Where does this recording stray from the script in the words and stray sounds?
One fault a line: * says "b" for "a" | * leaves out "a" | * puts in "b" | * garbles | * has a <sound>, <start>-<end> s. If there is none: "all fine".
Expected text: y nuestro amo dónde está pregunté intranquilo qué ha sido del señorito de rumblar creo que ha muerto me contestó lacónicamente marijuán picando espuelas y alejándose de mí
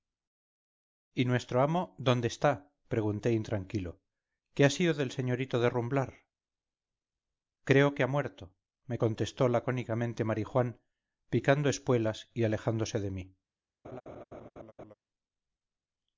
* has a laugh, 13.8-14.9 s